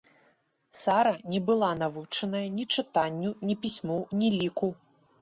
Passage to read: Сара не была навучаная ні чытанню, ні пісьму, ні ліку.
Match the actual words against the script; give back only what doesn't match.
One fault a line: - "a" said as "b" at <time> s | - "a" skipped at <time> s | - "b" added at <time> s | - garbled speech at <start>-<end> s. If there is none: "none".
none